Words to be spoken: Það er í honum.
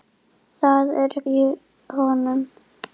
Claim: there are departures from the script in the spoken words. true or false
false